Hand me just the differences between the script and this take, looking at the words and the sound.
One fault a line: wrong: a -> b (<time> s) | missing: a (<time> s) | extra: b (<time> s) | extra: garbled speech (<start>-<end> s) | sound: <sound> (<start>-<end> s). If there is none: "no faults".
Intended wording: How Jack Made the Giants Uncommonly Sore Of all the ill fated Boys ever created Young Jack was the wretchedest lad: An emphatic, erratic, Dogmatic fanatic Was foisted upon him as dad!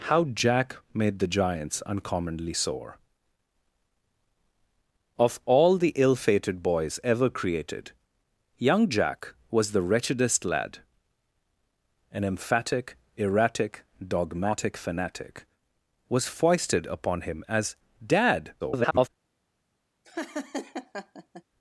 extra: garbled speech (18.6-19.1 s)
sound: laugh (20.0-21.4 s)